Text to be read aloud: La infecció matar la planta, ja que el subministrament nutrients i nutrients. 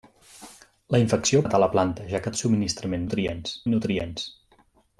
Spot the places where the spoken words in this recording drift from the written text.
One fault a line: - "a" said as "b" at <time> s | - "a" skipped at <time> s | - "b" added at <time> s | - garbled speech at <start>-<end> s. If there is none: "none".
none